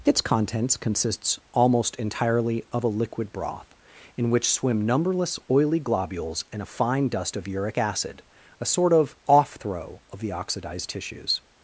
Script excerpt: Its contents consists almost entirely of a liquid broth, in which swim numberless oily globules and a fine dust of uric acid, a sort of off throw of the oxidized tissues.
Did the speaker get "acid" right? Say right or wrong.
right